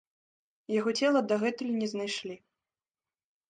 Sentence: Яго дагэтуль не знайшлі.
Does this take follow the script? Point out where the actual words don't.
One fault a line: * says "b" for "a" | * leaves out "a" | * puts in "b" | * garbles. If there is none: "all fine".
* puts in "цела"